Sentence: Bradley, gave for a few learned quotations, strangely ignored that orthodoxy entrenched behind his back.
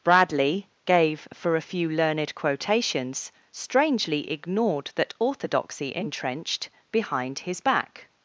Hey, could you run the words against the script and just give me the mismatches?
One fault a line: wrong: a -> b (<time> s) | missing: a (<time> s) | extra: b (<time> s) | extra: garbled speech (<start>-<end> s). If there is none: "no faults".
no faults